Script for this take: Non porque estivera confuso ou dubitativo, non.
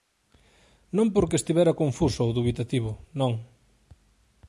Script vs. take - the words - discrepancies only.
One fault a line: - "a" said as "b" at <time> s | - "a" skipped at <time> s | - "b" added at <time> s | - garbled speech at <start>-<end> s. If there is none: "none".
none